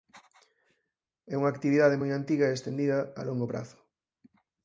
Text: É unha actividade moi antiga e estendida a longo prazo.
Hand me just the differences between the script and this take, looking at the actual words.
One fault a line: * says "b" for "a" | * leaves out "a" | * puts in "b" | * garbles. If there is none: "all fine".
all fine